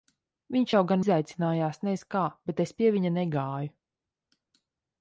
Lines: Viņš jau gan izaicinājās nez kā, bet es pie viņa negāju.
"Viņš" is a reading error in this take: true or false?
false